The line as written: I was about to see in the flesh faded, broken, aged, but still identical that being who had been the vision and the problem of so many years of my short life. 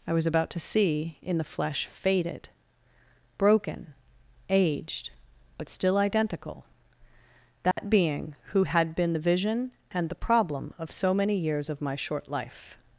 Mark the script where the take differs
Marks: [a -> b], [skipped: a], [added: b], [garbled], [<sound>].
I was about to see in the flesh faded, broken, aged, but still identical that [dropout] being who had been the vision and the problem of so many years of my short life.